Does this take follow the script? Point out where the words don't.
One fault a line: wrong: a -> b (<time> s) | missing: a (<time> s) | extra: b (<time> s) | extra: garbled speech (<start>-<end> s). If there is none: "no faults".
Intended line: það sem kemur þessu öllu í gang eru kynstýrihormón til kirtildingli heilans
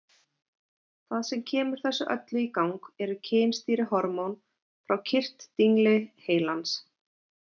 wrong: til -> frá (4.9 s)